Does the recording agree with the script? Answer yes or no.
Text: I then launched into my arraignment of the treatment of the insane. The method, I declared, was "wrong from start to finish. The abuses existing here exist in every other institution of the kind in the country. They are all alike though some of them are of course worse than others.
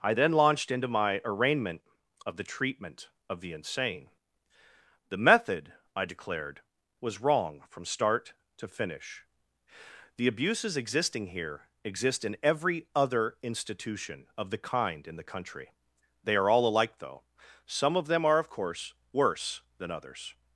yes